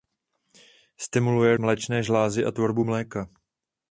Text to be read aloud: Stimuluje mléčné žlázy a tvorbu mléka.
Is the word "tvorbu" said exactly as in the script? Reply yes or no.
yes